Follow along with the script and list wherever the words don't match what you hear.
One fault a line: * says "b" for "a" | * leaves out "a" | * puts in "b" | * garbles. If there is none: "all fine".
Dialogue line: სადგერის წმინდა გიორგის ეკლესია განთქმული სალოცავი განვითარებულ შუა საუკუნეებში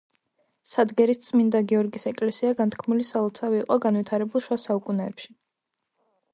* puts in "იყო"